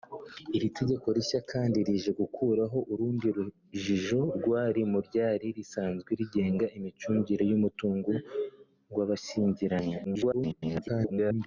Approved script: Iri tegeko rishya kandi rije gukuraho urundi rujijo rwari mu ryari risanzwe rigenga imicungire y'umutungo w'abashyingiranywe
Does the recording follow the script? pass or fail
fail